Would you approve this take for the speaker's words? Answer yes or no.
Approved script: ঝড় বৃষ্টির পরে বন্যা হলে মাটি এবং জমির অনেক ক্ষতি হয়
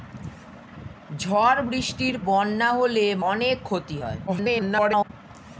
no